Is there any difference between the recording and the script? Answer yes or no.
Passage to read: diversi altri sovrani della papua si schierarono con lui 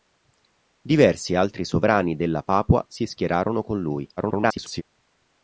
yes